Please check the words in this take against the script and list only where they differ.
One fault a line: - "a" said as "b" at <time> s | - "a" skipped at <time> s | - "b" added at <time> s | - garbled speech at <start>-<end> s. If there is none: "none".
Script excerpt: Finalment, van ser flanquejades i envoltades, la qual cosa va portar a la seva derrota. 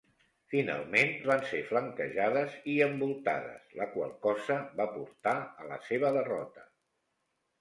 none